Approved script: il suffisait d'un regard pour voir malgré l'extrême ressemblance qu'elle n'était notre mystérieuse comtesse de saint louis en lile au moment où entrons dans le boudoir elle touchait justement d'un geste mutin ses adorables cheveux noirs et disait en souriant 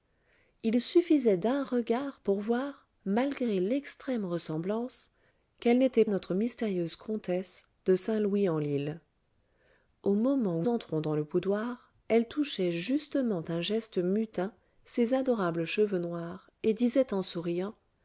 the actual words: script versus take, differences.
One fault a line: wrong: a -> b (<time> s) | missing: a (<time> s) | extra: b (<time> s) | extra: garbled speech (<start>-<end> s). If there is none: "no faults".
no faults